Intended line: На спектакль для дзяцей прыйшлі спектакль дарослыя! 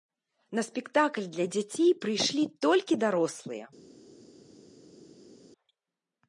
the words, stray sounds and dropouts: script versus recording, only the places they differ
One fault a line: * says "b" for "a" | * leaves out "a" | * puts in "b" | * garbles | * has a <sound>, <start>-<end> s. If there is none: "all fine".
* says "толькі" for "спектакль"